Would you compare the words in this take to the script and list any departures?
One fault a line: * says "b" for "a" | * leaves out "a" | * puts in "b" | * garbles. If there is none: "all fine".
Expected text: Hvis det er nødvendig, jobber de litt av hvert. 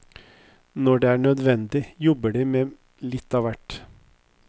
* says "Når" for "Hvis"
* puts in "med"